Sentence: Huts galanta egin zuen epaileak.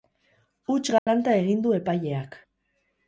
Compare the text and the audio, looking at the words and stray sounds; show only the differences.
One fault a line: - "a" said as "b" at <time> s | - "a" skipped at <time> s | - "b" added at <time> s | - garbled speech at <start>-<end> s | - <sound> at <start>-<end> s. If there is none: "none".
- dropout at 1.0-1.1 s
- "zuen" said as "du" at 1.7 s